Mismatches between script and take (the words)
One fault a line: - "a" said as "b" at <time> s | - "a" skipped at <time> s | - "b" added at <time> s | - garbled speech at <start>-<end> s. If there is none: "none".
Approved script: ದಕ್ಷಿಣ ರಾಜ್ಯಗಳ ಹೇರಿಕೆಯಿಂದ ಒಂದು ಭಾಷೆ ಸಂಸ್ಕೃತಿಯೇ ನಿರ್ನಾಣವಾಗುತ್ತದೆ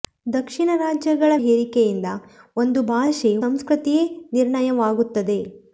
none